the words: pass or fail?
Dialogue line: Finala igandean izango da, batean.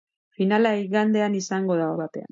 pass